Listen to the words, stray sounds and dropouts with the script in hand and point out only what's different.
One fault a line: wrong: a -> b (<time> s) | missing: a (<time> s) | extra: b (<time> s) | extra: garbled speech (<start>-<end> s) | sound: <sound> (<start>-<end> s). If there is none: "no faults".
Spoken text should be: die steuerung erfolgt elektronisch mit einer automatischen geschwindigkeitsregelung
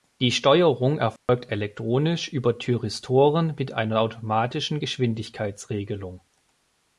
sound: dropout (1.2-1.3 s)
extra: über thyristoren (2.3 s)